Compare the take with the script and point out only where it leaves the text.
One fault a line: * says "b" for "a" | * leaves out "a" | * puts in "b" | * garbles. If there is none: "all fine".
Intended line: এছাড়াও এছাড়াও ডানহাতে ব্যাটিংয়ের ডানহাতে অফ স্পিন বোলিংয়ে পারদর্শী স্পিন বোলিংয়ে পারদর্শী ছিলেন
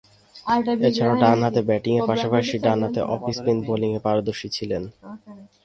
* leaves out "এছাড়াও"
* puts in "পাশাপাশি"
* leaves out "স্পিন বোলিংয়ে পারদর্শী"